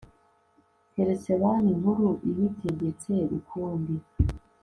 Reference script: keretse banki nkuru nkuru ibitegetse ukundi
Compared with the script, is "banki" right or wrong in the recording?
right